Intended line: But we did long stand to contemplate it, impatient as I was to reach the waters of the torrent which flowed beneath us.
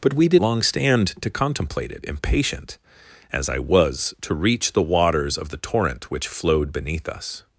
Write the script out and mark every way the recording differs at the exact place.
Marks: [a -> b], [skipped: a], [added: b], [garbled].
But we did long stand to contemplate it, impatient as I was to reach the waters of the torrent which flowed beneath us.